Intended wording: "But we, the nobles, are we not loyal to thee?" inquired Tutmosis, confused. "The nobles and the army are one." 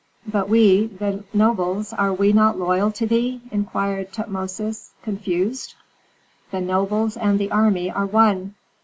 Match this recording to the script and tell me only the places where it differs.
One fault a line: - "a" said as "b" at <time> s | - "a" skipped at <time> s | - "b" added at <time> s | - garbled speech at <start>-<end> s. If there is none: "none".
none